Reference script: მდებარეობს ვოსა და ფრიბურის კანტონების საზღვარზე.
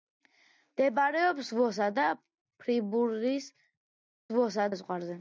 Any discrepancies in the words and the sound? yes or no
yes